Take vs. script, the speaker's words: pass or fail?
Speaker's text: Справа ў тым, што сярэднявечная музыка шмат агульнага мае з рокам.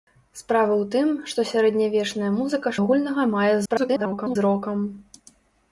fail